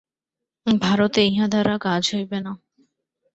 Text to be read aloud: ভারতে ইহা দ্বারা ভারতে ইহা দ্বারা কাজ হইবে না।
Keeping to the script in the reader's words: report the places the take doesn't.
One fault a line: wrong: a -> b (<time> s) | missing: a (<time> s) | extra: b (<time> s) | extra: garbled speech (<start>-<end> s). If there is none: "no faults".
missing: ভারতে ইহা দ্বারা (1.7 s)